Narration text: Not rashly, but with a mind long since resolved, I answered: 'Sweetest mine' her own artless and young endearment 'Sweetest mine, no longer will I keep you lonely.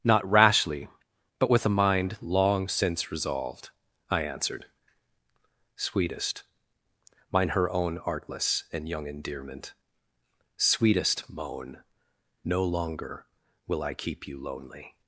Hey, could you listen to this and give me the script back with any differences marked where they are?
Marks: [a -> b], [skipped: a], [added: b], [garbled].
Not rashly, but with a mind long since resolved, I answered: 'Sweetest mine' her own artless and young endearment 'Sweetest [mine, -> moan] no longer will I keep you lonely.